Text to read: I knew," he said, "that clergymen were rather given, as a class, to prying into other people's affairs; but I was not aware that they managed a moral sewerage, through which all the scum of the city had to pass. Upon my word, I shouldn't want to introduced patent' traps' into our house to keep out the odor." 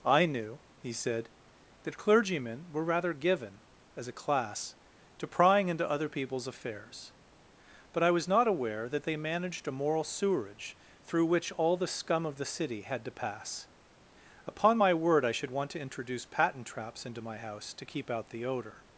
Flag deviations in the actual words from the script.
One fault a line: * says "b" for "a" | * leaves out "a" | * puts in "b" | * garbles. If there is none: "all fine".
* says "should" for "shouldn't"
* says "introduce" for "introduced"
* says "my" for "our"